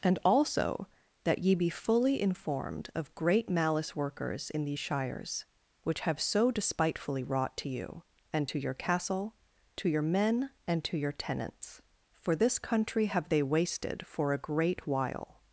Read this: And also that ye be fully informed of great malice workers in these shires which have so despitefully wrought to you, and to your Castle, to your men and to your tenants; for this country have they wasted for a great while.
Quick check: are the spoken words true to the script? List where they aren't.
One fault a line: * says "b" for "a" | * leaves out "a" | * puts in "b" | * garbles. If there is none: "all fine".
all fine